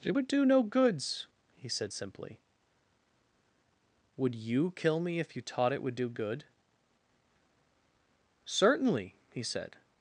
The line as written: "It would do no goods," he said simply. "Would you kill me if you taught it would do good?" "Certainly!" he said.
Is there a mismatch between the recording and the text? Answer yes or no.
no